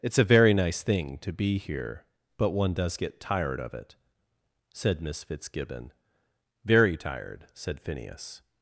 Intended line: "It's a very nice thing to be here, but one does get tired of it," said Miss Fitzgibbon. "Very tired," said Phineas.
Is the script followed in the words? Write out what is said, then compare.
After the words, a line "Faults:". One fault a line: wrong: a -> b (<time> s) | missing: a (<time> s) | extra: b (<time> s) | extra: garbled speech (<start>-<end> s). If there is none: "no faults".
"It's a very nice thing to be here, but one does get tired of it," said Miss Fitzgibbon. "Very tired," said Phineas.
Faults:
no faults